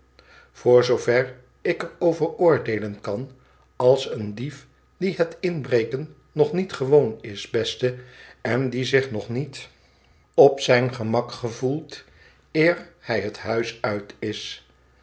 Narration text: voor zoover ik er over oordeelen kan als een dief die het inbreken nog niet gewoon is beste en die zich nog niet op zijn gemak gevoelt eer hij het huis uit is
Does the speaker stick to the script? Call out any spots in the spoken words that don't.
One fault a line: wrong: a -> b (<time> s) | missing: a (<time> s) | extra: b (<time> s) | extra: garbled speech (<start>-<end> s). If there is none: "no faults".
no faults